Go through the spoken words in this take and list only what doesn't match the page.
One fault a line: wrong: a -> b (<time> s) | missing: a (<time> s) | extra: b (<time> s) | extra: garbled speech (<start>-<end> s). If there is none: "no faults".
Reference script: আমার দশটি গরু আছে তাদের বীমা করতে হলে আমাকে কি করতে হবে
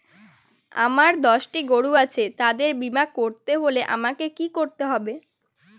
no faults